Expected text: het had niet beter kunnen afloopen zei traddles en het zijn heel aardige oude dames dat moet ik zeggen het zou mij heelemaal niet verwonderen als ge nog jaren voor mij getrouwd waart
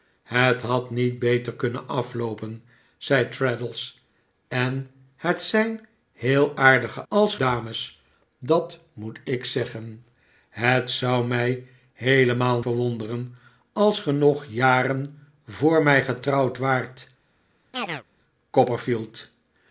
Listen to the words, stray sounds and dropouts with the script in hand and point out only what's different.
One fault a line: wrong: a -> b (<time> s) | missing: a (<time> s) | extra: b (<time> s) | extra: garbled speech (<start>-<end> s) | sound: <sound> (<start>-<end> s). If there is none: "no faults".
wrong: oude -> als (7.1 s)
missing: niet (12.6 s)
sound: chirp (17.7-18.0 s)